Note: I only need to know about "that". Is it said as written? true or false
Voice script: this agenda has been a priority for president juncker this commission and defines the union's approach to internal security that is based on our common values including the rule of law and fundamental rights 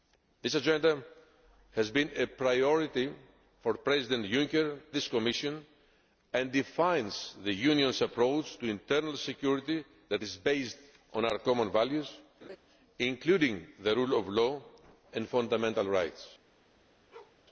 true